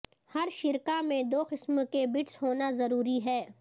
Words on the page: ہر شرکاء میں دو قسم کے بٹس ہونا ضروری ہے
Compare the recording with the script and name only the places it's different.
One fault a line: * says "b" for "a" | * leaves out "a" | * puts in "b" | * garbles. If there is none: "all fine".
all fine